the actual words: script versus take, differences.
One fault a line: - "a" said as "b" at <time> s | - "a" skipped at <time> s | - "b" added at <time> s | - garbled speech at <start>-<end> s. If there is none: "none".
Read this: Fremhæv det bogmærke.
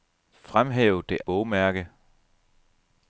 none